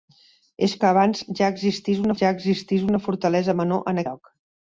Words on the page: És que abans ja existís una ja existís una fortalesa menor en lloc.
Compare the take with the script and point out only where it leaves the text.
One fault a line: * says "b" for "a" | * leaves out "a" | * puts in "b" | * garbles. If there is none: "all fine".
all fine